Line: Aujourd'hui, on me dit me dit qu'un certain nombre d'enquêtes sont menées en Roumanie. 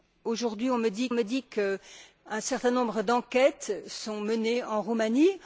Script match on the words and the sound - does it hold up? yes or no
yes